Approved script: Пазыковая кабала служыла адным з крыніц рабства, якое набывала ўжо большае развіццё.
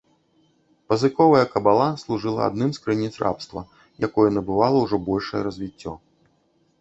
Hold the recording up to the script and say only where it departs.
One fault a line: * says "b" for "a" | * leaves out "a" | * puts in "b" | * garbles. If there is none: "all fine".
all fine